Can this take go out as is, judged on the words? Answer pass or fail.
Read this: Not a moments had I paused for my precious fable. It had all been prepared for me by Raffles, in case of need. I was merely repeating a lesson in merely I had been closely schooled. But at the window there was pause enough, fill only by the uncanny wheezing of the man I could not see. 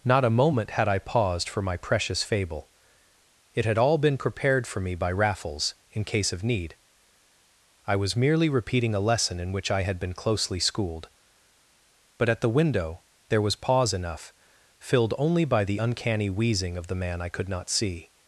fail